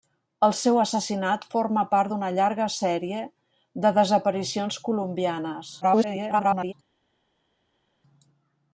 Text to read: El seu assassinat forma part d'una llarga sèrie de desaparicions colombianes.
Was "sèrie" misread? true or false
false